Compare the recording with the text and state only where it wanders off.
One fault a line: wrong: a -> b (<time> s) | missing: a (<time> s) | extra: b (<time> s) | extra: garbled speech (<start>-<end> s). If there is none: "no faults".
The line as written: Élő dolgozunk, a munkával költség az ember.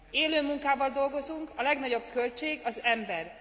extra: munkával (0.4 s)
wrong: munkával -> legnagyobb (1.6 s)